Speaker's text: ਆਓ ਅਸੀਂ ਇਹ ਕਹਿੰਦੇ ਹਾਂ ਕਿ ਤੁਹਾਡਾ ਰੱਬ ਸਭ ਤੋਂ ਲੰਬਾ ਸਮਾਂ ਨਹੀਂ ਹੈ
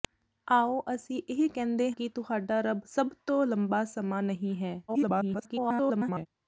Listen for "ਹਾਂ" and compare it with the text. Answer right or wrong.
wrong